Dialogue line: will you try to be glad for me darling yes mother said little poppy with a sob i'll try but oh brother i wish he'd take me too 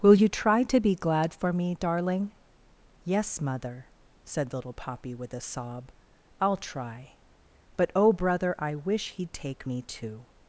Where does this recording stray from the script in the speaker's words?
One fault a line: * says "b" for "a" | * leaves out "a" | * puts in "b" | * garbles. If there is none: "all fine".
all fine